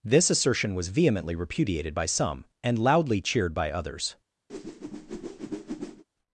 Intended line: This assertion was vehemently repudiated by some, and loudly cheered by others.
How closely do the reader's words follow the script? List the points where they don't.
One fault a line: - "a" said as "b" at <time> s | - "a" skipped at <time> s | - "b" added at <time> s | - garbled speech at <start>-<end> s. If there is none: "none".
none